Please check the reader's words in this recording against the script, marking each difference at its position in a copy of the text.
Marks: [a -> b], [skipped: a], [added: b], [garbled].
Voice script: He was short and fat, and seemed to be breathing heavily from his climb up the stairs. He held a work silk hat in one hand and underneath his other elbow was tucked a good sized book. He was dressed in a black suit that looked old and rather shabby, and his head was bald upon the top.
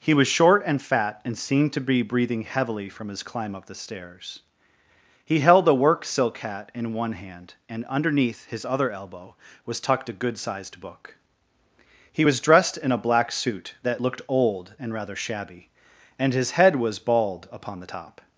He was short and fat, and seemed to be breathing heavily from his climb up the stairs. He held a work silk hat in one hand and underneath his other elbow was tucked a good sized book. He was dressed in a black suit that looked old and rather shabby, and his head was bald upon the top.